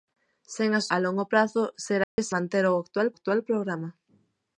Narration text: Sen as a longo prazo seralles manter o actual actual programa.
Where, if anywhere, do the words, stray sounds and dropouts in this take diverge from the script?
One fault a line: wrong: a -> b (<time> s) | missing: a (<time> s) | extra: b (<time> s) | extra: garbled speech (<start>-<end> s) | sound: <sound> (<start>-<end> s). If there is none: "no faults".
sound: dropout (2.0-2.2 s)